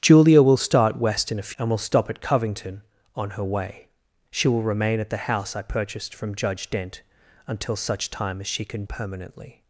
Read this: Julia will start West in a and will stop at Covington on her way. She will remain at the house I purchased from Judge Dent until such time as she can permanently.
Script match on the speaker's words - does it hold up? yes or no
yes